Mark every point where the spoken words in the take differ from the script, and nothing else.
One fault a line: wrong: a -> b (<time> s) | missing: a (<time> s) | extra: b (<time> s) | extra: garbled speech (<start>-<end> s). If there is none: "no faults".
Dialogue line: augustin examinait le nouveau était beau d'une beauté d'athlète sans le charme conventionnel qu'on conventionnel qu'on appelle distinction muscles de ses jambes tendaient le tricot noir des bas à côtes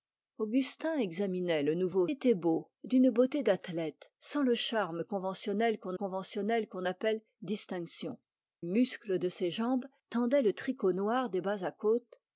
no faults